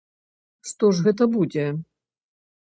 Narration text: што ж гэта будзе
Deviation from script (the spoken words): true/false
false